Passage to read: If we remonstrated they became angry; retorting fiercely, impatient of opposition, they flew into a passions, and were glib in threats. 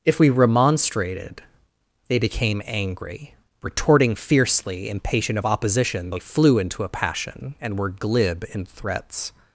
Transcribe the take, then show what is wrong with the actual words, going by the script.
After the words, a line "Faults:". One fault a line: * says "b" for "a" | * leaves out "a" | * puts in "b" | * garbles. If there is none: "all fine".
If we remonstrated they became angry; retorting fiercely, impatient of opposition, they flew into a passion, and were glib in threats.
Faults:
* says "passion" for "passions"